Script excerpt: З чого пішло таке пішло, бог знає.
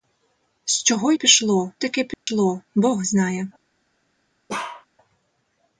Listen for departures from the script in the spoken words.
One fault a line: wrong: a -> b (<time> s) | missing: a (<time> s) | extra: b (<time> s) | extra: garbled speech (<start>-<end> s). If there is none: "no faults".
no faults